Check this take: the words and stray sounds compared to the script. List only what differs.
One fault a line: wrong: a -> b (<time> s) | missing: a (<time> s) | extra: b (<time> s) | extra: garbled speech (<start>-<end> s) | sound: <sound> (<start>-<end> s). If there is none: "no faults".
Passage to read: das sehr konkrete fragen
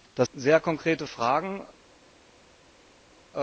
no faults